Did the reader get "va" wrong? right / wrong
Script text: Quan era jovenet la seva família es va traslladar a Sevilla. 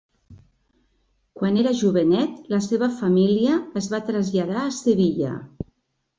right